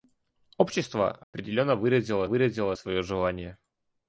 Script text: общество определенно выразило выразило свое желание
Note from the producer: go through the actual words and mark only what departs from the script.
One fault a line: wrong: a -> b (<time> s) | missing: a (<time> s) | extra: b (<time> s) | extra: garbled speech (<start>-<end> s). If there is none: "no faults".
no faults